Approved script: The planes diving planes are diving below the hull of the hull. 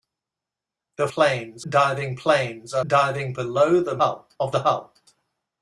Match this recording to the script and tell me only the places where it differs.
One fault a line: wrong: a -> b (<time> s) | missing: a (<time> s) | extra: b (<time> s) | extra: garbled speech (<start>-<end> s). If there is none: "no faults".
no faults